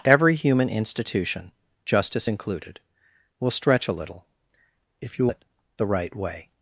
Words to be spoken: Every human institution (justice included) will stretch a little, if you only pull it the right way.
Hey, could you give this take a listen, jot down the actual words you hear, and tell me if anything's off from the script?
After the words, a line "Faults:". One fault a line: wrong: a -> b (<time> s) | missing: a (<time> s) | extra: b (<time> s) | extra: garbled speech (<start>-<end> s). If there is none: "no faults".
Every human institution (justice included) will stretch a little, if you it the right way.
Faults:
missing: only pull (5.3 s)